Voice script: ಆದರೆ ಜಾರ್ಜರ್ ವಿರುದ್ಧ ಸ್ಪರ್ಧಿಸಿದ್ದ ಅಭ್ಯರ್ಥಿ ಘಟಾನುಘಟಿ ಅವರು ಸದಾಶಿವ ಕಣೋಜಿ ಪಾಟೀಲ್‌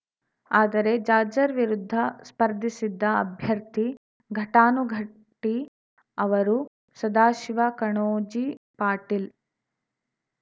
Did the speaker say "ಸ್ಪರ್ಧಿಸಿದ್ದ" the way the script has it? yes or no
yes